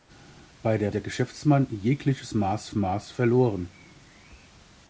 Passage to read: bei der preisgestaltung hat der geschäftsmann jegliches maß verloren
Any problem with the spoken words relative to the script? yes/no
yes